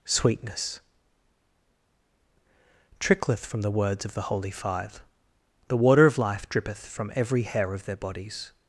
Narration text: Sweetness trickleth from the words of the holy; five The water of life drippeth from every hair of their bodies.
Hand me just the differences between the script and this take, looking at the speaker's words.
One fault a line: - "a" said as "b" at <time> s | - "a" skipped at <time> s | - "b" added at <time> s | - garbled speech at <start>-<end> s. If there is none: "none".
none